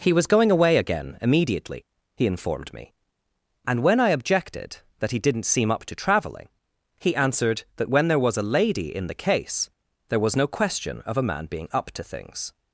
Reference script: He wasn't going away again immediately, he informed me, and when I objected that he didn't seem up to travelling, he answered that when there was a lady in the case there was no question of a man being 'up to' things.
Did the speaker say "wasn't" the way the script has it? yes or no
no